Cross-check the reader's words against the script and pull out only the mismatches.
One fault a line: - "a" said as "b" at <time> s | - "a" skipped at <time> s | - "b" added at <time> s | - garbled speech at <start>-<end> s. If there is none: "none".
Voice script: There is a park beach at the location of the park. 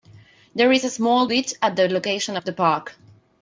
- "park" said as "small" at 0.9 s